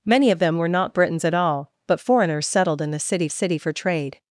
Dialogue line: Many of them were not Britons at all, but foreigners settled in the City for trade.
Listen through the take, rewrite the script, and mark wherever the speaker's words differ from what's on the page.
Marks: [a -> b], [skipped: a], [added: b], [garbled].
Many of them were not Britons at all, but foreigners settled in the City [added: City] for trade.